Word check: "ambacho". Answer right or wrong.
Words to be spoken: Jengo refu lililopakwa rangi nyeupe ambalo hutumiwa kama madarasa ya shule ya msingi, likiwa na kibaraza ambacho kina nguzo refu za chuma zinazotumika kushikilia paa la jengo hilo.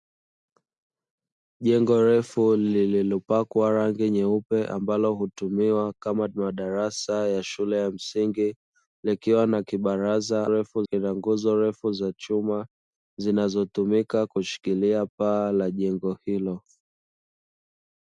wrong